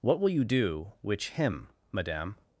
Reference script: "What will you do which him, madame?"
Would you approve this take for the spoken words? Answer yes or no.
yes